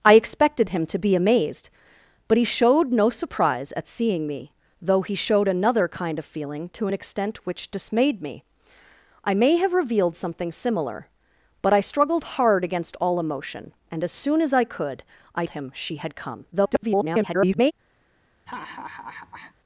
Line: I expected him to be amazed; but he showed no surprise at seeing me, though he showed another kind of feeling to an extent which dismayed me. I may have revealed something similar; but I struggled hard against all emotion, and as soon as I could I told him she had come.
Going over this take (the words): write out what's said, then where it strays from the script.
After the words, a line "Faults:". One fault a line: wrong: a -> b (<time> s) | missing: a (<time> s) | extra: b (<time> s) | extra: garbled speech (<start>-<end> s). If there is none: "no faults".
I expected him to be amazed; but he showed no surprise at seeing me, though he showed another kind of feeling to an extent which dismayed me. I may have revealed something similar; but I struggled hard against all emotion, and as soon as I could I him she had come. [garbled]
Faults:
missing: told (15.4 s)
extra: garbled speech (16.5-17.7 s)